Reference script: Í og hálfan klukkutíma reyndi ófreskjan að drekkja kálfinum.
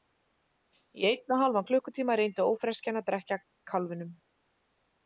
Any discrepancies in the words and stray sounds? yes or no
yes